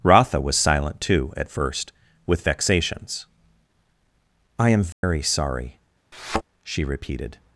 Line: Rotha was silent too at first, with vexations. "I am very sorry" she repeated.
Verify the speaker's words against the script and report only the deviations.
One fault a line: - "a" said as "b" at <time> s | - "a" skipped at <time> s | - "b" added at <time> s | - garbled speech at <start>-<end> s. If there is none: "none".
none